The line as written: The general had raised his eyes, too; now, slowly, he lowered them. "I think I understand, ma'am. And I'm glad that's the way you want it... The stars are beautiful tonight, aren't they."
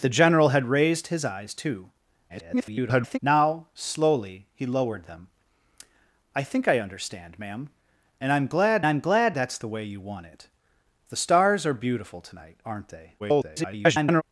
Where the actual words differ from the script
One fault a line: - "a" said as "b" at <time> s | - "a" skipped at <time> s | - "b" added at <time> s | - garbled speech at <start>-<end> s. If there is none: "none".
- garbled speech at 2.3-3.2 s
- "I'm glad" added at 8.8 s
- garbled speech at 13.2-14.2 s